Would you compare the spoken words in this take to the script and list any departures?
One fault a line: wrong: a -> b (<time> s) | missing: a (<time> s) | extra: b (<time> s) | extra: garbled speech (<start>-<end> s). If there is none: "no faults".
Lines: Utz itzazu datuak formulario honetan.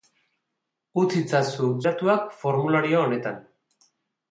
no faults